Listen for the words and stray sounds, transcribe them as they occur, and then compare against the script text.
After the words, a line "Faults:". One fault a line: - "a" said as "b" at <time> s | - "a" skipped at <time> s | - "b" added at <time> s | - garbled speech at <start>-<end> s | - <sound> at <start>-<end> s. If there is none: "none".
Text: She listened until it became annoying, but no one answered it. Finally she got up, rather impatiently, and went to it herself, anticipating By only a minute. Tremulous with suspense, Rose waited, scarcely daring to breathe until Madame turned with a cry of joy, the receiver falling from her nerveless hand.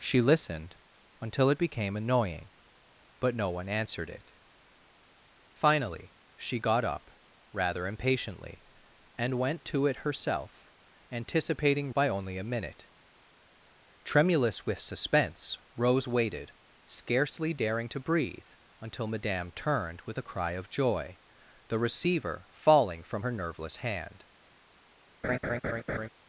She listened until it became annoying, but no one answered it. Finally she got up, rather impatiently, and went to it herself, anticipating By only a minute. Tremulous with suspense, Rose waited, scarcely daring to breathe until Madame turned with a cry of joy, the receiver falling from her nerveless hand.
Faults:
- laugh at 25.2-26.1 s